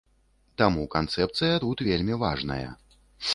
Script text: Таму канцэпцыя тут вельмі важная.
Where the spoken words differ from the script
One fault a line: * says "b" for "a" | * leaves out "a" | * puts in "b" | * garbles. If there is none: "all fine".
all fine